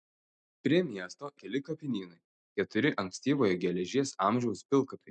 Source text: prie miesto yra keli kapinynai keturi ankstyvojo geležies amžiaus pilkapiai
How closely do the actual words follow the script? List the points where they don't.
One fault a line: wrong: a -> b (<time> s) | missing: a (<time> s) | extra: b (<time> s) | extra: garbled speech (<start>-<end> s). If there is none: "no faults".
missing: yra (1.3 s)